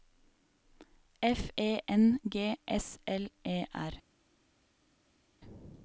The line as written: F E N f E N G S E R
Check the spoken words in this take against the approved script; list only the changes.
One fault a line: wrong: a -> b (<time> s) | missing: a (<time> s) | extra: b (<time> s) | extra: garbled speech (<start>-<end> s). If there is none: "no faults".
missing: f E N (2.2 s)
extra: L (3.1 s)